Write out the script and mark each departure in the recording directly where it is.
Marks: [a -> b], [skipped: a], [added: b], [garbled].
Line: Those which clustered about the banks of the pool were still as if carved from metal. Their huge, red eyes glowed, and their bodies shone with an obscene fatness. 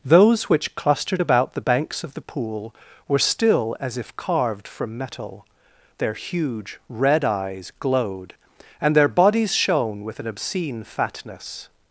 Those which clustered about the banks of the pool were still as if carved from metal. Their huge, red eyes glowed, and their bodies shone with an obscene fatness.